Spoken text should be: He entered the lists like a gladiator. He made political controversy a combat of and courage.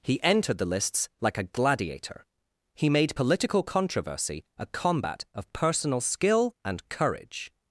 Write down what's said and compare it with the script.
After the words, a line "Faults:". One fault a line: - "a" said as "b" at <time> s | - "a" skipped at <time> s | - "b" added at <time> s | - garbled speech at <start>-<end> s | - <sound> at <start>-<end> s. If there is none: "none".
He entered the lists like a gladiator. He made political controversy a combat of personal skill and courage.
Faults:
- "personal skill" added at 5.5 s